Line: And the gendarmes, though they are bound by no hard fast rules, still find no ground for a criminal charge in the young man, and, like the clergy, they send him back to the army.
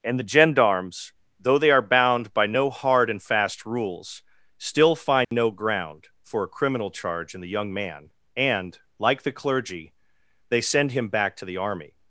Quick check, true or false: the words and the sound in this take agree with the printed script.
false